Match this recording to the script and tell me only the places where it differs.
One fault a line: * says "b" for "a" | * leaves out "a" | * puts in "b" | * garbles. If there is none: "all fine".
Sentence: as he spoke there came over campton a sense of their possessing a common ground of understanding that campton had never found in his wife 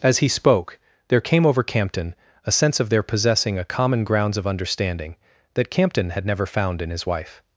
* says "grounds" for "ground"